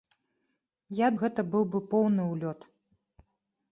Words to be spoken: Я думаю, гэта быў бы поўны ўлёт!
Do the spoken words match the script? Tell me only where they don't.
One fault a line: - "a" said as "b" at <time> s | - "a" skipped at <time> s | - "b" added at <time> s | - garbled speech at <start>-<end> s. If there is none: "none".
- "думаю" skipped at 1.1 s